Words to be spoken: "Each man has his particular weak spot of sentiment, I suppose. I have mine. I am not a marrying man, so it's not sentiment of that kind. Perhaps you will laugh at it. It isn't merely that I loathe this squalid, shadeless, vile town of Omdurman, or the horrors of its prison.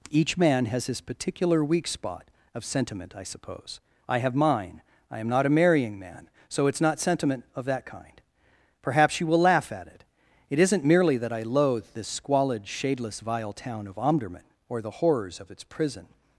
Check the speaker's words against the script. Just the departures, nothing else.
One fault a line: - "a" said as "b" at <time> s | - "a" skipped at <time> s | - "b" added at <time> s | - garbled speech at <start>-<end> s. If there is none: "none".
none